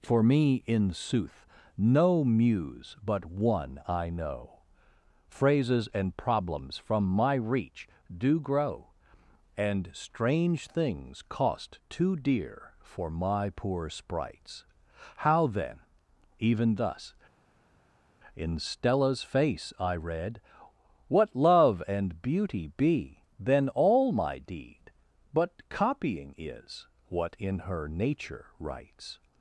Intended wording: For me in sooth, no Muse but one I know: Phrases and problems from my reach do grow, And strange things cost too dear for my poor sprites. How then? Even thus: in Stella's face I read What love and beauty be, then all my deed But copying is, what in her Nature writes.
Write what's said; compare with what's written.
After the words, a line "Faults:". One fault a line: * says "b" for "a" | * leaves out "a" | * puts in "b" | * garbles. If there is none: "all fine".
For me in sooth, no Muse but one I know: Phrases and problems from my reach do grow, And strange things cost too dear for my poor sprites. How then? Even thus: in Stella's face I read What love and beauty be, then all my deed But copying is, what in her Nature writes.
Faults:
all fine